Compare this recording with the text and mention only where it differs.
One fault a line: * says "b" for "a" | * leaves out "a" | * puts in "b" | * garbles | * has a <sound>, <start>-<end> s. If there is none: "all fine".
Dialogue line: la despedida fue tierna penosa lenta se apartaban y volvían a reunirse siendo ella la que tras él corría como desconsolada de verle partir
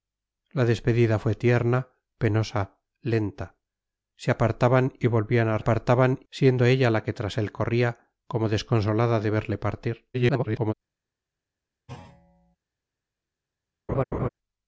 * says "apartaban" for "reunirse"
* garbles
* has a thud, 11.9-12.6 s
* has a laugh, 13.9-14.3 s